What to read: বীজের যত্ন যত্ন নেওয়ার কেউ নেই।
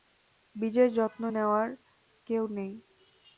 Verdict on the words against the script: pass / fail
fail